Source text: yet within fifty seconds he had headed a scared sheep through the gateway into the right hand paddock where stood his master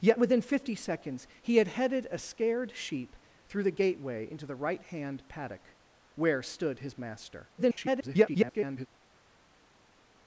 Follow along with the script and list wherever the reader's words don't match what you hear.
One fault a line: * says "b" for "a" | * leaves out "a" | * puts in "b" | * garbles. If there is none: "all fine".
* garbles